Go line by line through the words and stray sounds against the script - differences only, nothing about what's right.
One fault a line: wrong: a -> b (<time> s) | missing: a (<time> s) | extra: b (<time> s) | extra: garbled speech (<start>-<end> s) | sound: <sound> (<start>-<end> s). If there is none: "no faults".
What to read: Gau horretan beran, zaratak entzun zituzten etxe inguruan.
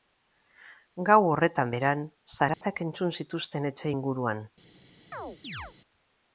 sound: dropout (2.5-2.6 s)
sound: chirp (5.1-5.7 s)